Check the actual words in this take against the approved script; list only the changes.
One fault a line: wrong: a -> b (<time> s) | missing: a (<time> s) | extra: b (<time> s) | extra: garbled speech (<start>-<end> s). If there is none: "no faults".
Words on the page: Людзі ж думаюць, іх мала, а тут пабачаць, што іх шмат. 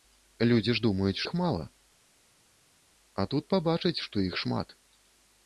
no faults